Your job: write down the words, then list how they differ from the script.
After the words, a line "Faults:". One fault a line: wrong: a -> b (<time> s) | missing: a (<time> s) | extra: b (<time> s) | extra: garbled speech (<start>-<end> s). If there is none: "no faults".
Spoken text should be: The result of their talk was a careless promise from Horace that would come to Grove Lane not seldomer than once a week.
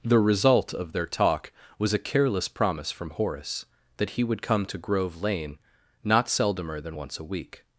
The result of their talk was a careless promise from Horace that he would come to Grove Lane not seldomer than once a week.
Faults:
extra: he (4.1 s)